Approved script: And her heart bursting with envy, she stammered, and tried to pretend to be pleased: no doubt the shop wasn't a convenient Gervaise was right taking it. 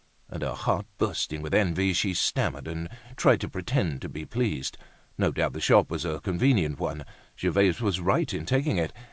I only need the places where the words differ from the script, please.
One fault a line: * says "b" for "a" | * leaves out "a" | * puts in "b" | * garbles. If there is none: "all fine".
* says "was" for "wasn't"
* puts in "one"
* puts in "in"